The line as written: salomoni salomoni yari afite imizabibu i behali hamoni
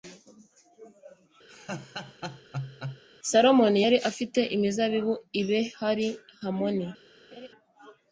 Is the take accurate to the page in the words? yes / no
no